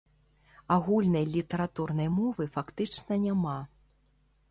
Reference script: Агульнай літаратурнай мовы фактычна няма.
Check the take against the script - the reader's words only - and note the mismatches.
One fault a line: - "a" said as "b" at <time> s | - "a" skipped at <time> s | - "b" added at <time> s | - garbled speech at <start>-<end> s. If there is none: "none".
none